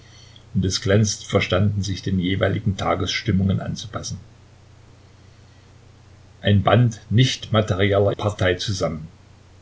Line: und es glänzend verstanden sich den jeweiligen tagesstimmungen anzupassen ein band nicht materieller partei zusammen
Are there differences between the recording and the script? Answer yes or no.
no